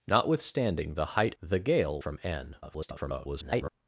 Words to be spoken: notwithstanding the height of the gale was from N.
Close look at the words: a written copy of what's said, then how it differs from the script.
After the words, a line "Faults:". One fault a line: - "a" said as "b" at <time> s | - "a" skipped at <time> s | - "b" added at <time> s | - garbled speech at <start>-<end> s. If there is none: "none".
notwithstanding the height the gale from N. [garbled]
Faults:
- "of" skipped at 1.4 s
- "was" skipped at 2.0 s
- garbled speech at 2.6-3.7 s